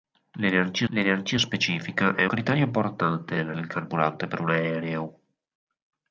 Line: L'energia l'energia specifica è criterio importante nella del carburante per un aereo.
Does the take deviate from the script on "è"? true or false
false